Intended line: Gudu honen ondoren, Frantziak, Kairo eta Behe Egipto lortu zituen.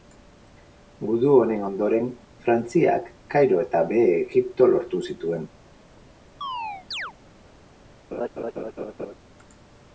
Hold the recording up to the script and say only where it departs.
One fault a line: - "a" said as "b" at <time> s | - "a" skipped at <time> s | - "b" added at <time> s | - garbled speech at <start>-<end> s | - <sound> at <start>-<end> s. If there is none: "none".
- chirp at 6.4-7.1 s
- laugh at 8.1-9.2 s